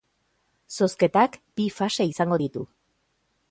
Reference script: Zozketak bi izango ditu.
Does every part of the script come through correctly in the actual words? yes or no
no